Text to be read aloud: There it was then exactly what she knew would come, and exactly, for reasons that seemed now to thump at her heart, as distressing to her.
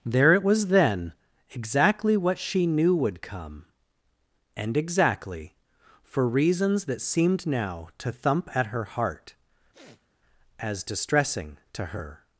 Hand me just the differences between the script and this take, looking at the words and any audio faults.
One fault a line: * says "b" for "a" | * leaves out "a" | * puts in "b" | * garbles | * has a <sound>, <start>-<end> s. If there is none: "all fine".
* has a sniff, 9.7-10.1 s